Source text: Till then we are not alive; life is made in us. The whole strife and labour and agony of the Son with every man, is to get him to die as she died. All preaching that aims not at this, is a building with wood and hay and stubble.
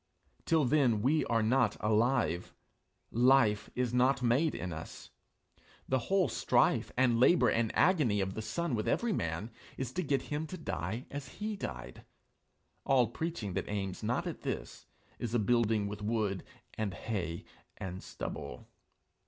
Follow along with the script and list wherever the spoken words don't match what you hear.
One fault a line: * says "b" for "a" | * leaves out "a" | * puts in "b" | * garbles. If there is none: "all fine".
* puts in "not"
* says "he" for "she"